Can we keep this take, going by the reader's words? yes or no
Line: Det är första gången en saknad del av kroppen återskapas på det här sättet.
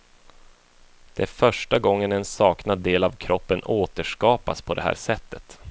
yes